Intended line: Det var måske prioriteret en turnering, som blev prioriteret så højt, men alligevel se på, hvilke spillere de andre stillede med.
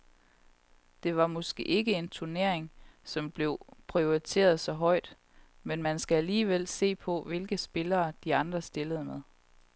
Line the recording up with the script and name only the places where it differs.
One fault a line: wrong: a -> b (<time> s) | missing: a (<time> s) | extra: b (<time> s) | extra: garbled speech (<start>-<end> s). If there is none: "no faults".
wrong: prioriteret -> ikke (1.6 s)
extra: man skal (5.8 s)